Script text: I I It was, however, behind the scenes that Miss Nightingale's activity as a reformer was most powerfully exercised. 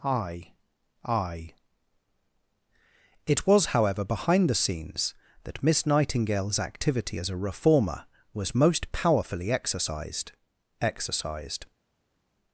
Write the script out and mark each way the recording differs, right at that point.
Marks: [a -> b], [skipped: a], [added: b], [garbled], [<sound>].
I I It was, however, behind the scenes that Miss Nightingale's activity as a reformer was most powerfully exercised. [added: exercised]